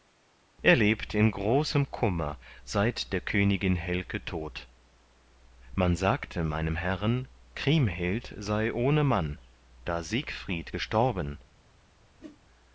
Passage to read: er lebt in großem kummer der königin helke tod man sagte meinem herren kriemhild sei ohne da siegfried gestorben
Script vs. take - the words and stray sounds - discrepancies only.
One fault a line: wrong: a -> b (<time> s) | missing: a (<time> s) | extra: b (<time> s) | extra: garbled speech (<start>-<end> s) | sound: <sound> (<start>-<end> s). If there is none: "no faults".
extra: seit (2.6 s)
extra: mann (9.0 s)
sound: whoosh (12.2-12.4 s)